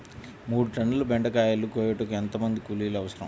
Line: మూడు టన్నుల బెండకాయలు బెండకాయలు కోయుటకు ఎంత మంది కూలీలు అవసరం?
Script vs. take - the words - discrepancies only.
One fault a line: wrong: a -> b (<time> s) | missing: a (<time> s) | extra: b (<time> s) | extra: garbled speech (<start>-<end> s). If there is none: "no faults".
missing: బెండకాయలు (1.7 s)